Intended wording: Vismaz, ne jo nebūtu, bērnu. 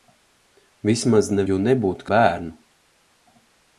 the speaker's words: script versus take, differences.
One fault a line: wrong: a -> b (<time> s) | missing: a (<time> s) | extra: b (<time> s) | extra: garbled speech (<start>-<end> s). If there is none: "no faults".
no faults